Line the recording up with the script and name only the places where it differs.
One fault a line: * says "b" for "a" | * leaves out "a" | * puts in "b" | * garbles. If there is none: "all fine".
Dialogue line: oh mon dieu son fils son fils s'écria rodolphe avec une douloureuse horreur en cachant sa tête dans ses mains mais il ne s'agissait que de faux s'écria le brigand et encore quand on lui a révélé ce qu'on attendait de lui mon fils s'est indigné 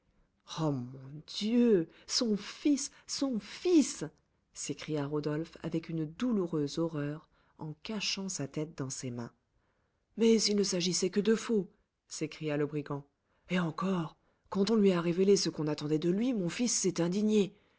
all fine